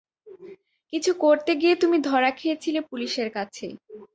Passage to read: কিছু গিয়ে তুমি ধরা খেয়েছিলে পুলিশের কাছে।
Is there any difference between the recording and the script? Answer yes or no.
yes